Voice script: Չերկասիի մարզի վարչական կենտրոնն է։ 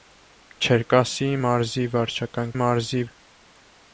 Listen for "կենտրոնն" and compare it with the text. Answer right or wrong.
wrong